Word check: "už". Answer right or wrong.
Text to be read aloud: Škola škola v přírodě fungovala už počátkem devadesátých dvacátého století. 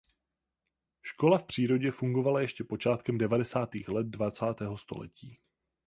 wrong